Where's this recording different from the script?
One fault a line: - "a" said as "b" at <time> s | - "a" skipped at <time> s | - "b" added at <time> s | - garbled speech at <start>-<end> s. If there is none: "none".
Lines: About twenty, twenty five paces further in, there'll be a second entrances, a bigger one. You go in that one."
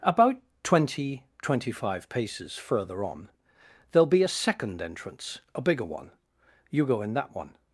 - "in" said as "on" at 3.0 s
- "entrances" said as "entrance" at 4.8 s